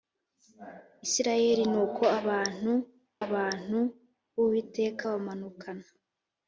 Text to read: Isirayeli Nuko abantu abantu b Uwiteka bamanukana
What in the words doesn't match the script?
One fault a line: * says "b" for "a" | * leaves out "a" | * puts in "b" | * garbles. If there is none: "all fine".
all fine